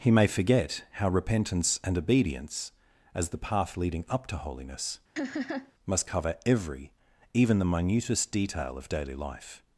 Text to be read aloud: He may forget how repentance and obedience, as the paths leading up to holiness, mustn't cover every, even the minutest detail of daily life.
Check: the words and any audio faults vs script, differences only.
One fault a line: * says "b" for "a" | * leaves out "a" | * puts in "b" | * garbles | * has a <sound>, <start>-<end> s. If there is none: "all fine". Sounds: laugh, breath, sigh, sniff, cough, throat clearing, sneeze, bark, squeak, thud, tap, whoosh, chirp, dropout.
* says "path" for "paths"
* has a laugh, 5.2-5.7 s
* says "must" for "mustn't"